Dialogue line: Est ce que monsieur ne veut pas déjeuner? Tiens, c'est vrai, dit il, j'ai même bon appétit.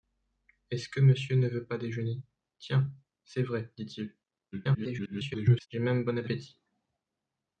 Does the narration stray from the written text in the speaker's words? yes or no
yes